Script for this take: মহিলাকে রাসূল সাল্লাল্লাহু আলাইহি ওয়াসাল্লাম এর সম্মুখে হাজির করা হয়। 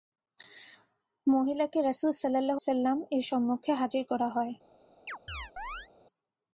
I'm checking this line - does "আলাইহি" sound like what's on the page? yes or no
no